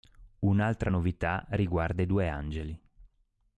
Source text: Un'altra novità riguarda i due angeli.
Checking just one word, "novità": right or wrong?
right